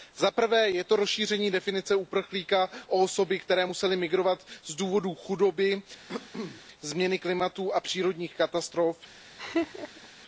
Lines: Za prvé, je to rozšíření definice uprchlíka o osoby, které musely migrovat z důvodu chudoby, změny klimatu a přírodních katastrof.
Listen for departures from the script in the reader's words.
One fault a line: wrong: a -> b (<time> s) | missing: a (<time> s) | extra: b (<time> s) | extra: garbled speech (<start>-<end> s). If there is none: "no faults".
no faults